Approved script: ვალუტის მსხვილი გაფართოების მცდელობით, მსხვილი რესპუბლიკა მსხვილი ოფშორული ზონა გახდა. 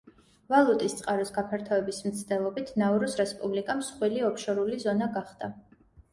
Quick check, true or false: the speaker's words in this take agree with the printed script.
false